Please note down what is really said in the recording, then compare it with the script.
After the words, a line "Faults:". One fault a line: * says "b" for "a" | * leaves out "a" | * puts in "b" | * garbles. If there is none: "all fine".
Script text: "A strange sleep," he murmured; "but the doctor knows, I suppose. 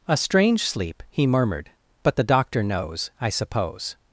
"A strange sleep," he murmured; "but the doctor knows, I suppose.
Faults:
all fine